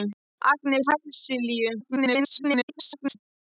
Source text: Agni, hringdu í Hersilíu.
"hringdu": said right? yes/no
no